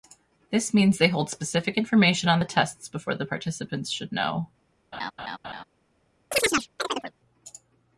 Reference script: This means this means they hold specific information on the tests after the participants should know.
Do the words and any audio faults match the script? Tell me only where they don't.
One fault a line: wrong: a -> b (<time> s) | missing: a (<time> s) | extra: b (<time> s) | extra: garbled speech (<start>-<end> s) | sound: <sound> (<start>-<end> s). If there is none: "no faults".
missing: this means (1.0 s)
wrong: after -> before (2.9 s)
sound: laugh (4.9-5.6 s)
sound: chirp (6.3-7.1 s)